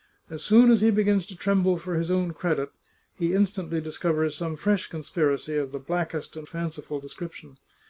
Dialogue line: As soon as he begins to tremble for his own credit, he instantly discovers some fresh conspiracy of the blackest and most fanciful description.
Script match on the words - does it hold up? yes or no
no